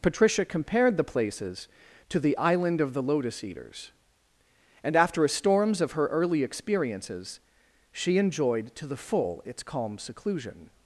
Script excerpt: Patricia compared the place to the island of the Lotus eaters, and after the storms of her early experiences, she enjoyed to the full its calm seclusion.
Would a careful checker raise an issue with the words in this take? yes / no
yes